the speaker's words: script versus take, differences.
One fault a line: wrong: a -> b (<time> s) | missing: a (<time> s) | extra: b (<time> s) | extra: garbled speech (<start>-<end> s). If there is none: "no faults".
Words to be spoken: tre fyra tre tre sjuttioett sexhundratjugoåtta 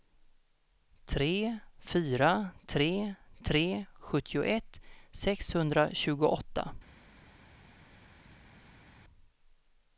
no faults